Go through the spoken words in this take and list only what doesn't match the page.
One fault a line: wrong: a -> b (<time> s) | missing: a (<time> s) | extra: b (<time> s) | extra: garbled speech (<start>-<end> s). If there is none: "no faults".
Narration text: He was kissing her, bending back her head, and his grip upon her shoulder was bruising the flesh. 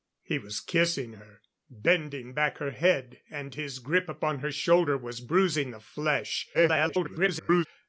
extra: garbled speech (6.5-7.7 s)